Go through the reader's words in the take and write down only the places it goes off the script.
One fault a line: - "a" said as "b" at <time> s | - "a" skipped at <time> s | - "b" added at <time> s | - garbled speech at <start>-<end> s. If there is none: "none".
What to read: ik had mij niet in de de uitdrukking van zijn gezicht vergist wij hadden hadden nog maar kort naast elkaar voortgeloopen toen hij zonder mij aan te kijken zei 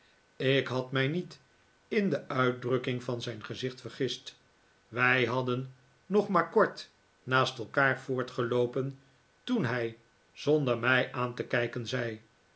- "de" skipped at 2.3 s
- "hadden" skipped at 5.7 s